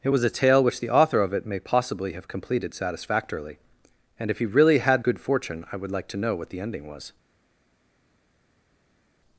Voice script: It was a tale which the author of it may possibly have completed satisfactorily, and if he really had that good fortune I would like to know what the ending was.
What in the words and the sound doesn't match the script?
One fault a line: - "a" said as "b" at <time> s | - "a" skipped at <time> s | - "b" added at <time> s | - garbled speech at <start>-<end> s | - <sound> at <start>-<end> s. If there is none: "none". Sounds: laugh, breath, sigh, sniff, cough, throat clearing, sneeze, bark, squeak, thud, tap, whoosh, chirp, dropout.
- "that" skipped at 5.0 s